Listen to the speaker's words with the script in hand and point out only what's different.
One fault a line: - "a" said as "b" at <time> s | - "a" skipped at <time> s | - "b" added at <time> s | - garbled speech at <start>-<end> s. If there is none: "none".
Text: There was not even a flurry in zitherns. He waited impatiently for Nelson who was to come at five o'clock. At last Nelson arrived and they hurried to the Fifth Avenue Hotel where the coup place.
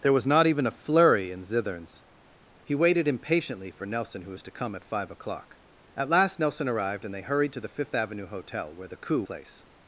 none